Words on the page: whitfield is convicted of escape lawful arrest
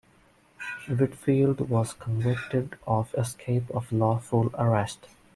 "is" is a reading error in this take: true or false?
true